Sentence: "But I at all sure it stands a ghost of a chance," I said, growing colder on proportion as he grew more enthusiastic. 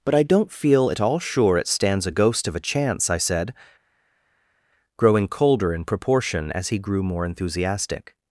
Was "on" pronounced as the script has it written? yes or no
no